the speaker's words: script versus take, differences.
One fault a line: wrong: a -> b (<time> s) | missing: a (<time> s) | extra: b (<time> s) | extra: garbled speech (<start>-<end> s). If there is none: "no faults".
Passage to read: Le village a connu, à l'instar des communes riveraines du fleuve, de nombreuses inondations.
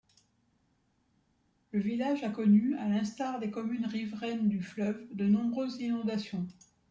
no faults